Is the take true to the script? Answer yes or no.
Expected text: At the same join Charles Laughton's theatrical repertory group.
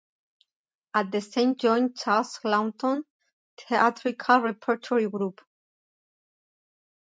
yes